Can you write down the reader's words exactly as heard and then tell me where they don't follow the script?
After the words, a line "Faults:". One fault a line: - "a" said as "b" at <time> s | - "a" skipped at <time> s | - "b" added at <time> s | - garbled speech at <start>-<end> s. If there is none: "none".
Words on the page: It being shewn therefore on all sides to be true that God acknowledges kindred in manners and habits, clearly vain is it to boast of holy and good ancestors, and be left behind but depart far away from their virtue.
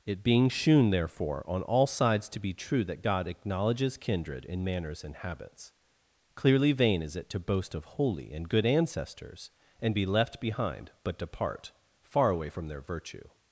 It being shewn therefore on all sides to be true that God acknowledges kindred in manners and habits, clearly vain is it to boast of holy and good ancestors, and be left behind but depart far away from their virtue.
Faults:
none